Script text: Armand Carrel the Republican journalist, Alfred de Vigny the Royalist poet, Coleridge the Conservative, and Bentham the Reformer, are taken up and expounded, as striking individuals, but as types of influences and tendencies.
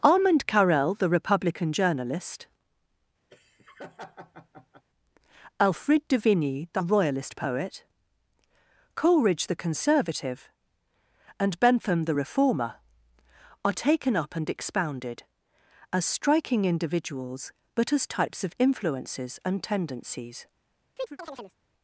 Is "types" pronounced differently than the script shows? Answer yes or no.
no